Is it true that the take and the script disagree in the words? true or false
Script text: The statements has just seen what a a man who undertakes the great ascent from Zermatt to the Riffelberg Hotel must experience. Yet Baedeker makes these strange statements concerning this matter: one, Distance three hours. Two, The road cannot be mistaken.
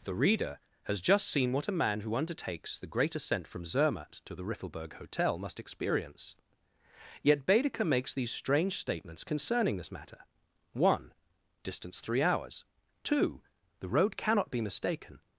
true